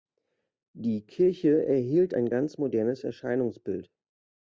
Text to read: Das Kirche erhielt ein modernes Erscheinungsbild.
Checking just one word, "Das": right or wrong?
wrong